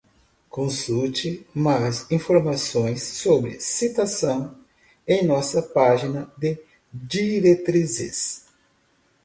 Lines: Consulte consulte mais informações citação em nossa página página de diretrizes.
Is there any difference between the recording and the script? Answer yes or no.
yes